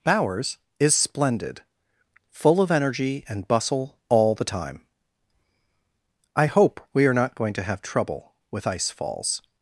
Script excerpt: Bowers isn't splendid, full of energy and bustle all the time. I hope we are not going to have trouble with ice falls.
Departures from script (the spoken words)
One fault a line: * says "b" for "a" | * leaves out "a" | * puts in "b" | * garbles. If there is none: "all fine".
* says "is" for "isn't"